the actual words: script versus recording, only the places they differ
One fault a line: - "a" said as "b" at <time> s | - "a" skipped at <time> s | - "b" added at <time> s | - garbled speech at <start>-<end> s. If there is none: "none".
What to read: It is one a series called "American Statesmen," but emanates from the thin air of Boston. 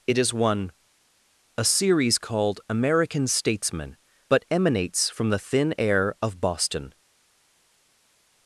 none